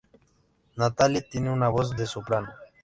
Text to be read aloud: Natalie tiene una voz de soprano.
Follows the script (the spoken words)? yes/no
yes